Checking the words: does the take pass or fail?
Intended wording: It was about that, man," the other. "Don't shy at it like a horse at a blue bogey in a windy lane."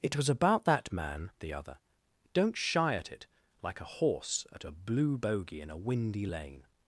pass